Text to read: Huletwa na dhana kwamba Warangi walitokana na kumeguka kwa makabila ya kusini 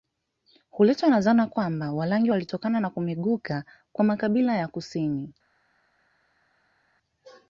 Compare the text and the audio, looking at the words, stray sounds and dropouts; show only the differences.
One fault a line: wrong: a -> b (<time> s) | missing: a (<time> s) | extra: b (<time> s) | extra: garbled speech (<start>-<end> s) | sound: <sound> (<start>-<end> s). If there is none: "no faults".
no faults